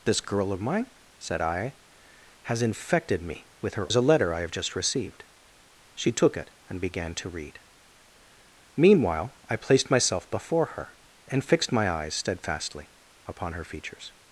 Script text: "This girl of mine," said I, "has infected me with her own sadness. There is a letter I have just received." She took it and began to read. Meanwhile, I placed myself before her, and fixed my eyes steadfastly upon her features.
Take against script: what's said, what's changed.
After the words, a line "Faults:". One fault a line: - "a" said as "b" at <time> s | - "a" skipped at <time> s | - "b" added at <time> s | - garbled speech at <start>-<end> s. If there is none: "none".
"This girl of mine," said I, "has infected me with her is a letter I have just received." She took it and began to read. Meanwhile, I placed myself before her, and fixed my eyes steadfastly upon her features.
Faults:
- "own sadness There" skipped at 3.9 s